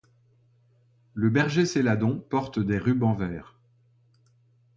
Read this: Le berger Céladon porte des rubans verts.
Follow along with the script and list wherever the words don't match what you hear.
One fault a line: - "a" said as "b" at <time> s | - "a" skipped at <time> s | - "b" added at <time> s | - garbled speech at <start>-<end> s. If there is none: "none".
none